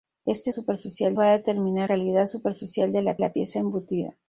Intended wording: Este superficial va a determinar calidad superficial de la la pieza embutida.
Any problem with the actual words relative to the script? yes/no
no